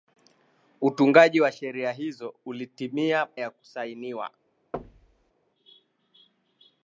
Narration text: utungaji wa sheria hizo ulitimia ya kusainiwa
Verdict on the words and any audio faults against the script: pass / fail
fail